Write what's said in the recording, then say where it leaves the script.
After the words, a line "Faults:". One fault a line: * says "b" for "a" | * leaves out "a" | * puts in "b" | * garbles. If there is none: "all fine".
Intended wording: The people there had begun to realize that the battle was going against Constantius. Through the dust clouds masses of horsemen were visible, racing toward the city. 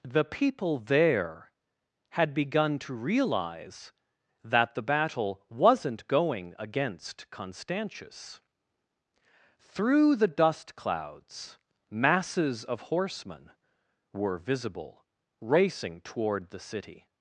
The people there had begun to realize that the battle wasn't going against Constantius. Through the dust clouds masses of horsemen were visible, racing toward the city.
Faults:
* says "wasn't" for "was"